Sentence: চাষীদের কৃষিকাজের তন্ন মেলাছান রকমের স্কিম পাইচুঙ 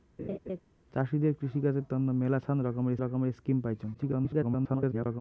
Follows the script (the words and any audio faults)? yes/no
no